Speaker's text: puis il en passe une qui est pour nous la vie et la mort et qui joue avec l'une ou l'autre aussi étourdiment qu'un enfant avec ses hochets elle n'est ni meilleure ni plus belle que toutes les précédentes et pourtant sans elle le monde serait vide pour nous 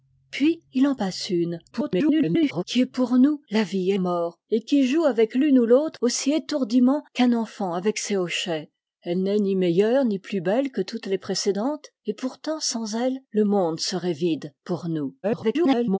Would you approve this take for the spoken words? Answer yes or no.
no